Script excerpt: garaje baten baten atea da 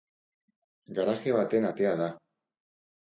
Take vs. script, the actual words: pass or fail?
fail